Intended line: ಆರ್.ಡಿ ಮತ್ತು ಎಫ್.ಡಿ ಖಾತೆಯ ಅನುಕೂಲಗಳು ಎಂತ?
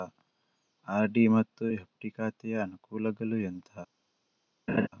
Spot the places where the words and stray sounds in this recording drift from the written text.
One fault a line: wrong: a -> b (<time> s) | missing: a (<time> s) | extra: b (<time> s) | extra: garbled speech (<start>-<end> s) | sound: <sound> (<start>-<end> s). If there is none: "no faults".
sound: laugh (4.7-4.9 s)